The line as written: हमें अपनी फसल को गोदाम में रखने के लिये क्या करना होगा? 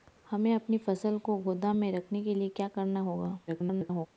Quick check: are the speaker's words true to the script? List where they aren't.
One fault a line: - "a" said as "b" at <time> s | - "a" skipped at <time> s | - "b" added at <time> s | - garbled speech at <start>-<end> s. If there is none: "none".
- garbled speech at 3.5-4.1 s